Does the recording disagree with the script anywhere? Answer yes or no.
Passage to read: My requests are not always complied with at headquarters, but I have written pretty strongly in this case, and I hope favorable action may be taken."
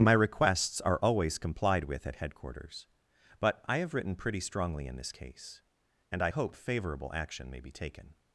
yes